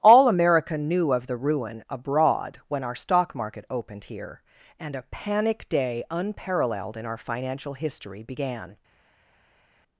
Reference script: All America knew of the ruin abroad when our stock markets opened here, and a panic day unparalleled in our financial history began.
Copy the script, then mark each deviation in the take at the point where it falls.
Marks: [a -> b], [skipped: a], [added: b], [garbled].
All America knew of the ruin abroad when our stock [markets -> market] opened here, and a panic day unparalleled in our financial history began.